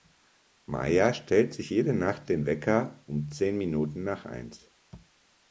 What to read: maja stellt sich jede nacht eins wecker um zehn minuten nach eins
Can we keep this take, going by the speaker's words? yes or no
no